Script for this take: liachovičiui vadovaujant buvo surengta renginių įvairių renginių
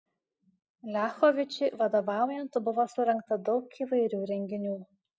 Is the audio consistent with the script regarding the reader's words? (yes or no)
no